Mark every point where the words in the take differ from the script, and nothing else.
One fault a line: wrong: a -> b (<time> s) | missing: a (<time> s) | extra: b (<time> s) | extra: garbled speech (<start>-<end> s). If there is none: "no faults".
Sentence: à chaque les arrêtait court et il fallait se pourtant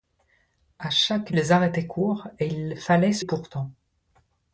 no faults